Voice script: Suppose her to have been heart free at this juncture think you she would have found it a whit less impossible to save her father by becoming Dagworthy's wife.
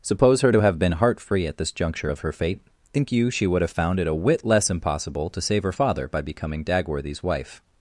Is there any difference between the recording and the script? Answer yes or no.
yes